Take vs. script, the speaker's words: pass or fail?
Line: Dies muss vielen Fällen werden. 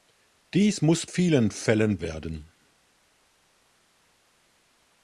pass